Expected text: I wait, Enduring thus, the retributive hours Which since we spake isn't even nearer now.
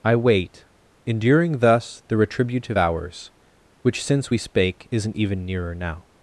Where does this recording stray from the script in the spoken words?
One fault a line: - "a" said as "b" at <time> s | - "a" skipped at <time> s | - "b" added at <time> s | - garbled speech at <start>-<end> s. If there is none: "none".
none